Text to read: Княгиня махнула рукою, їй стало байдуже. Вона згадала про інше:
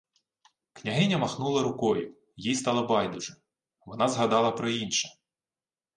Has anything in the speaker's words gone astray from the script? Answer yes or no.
no